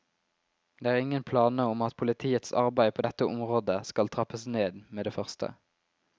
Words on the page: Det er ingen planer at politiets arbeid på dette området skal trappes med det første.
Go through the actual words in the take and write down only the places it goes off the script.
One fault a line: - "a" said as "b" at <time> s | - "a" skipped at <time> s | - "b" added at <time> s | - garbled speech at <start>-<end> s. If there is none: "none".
- "om" added at 1.7 s
- "ned" added at 4.6 s